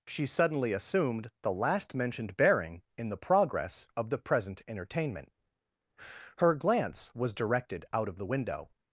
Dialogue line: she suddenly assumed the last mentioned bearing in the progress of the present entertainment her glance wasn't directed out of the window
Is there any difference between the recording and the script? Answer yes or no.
yes